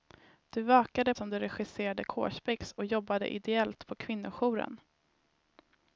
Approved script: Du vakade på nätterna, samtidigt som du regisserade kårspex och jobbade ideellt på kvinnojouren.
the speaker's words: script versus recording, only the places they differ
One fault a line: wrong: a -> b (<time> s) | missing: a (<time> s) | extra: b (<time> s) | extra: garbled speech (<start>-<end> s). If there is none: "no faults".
missing: på nätterna samtidigt (1.1 s)